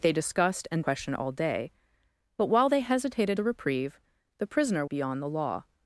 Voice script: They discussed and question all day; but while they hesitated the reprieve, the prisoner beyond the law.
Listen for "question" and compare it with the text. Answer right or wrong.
right